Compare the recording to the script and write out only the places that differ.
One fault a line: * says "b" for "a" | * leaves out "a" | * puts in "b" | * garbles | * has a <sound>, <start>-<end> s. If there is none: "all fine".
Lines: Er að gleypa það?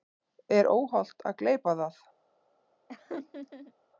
* puts in "óhollt"
* has a laugh, 2.9-3.7 s